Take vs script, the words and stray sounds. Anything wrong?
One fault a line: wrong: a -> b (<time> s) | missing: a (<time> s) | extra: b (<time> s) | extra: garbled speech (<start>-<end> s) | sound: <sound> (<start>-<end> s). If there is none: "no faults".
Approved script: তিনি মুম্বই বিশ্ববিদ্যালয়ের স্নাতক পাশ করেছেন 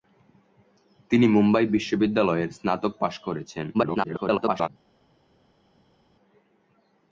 extra: garbled speech (3.7-4.7 s)